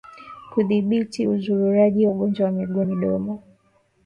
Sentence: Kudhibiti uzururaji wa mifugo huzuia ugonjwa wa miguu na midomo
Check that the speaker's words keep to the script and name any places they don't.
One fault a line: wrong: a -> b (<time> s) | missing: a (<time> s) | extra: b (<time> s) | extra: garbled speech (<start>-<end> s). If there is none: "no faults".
missing: wa mifugo huzuia (2.1 s)
missing: na (2.8 s)